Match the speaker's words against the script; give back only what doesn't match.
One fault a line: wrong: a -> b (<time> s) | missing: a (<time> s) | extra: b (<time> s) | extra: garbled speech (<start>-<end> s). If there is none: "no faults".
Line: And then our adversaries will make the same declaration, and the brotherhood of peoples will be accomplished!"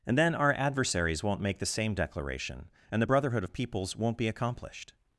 wrong: will -> won't (1.2 s)
wrong: will -> won't (4.0 s)